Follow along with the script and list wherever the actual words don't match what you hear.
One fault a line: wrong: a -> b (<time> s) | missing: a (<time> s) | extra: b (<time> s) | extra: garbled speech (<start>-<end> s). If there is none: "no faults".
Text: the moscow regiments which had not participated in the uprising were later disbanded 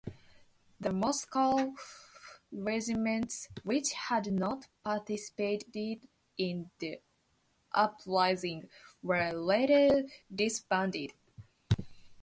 no faults